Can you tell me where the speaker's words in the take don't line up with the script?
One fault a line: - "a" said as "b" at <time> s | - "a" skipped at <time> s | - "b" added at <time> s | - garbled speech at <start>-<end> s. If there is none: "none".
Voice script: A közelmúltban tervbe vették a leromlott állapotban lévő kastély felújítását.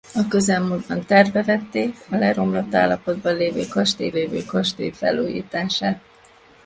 - "lévő kastély" added at 4.1 s